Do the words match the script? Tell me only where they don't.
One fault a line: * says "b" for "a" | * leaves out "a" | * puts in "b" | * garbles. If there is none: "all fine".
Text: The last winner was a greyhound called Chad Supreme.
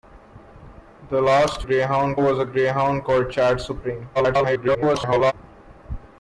* says "greyhound" for "winner"
* garbles